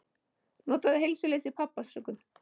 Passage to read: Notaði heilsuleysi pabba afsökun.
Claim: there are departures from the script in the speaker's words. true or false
false